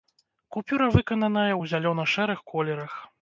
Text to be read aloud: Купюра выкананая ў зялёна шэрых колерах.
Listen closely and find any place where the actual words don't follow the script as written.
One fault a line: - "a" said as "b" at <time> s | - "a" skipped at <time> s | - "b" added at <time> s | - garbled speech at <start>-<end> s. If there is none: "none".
none